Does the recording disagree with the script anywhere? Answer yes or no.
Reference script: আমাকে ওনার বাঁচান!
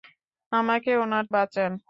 no